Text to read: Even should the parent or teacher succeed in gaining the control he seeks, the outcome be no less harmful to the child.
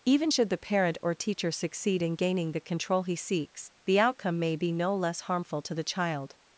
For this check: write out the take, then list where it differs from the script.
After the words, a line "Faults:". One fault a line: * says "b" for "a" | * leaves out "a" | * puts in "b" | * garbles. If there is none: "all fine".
Even should the parent or teacher succeed in gaining the control he seeks, the outcome may be no less harmful to the child.
Faults:
* puts in "may"